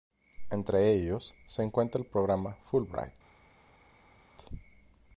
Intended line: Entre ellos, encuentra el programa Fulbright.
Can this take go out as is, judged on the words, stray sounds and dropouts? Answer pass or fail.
fail